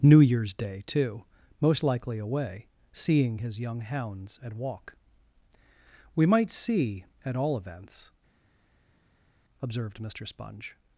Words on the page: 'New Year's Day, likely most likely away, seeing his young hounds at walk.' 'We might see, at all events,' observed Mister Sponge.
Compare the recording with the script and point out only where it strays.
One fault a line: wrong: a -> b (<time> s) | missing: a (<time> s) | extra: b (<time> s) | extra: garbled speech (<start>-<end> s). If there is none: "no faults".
wrong: likely -> too (0.9 s)